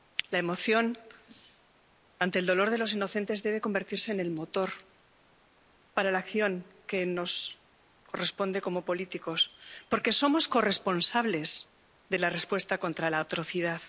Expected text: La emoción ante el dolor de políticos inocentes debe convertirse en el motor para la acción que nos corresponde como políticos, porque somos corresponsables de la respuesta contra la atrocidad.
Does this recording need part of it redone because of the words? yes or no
yes